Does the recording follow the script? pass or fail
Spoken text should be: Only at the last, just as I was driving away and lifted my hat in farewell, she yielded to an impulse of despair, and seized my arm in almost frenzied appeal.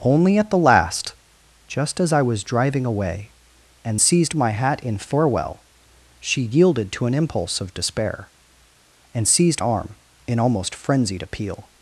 fail